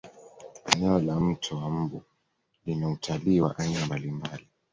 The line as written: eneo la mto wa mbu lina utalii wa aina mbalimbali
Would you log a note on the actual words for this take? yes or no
no